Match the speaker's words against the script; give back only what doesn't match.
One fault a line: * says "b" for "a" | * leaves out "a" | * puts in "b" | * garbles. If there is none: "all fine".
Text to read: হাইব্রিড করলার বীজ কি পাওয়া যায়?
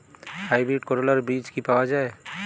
all fine